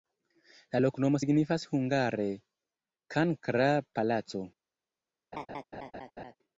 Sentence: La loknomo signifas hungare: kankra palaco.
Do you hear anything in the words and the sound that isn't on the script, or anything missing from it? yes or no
yes